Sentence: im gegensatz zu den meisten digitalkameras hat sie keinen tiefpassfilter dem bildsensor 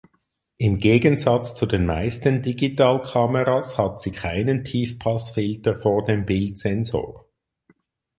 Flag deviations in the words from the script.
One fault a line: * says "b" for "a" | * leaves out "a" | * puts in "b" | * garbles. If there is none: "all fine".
* puts in "vor"